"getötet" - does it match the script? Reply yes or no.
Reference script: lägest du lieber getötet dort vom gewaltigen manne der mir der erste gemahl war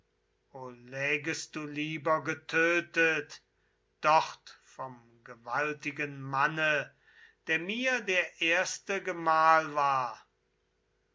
yes